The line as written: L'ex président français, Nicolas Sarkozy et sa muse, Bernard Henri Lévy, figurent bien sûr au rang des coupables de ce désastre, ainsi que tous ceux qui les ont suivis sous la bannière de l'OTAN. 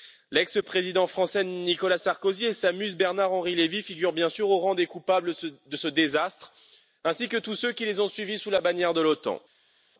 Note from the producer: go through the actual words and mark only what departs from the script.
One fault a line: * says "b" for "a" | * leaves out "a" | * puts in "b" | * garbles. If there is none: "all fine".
all fine